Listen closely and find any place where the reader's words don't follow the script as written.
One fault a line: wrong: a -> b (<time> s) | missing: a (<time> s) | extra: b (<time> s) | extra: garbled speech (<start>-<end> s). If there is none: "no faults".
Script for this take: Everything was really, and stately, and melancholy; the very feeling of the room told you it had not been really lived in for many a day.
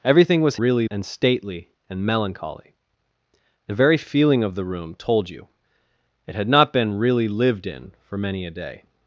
no faults